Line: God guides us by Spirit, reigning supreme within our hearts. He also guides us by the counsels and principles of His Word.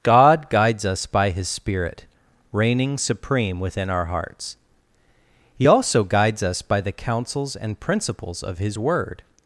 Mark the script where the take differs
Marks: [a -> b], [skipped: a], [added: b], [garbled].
God guides us by [added: His] Spirit, reigning supreme within our hearts. He also guides us by the counsels and principles of His Word.